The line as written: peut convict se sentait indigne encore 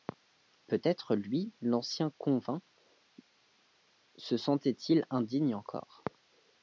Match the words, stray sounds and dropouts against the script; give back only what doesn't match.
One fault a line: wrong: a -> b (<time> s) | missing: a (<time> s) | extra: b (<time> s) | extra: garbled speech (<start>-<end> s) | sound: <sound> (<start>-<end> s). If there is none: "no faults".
extra: être lui l'ancien (0.8 s)
extra: il (4.9 s)